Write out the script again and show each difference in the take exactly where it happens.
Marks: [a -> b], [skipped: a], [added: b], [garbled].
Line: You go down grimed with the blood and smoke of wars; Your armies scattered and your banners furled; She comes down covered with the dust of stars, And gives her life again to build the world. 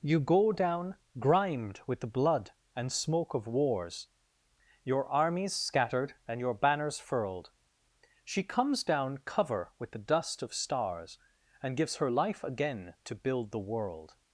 You go down grimed with the blood and smoke of wars; Your armies scattered and your banners furled; She comes down [covered -> cover] with the dust of stars, And gives her life again to build the world.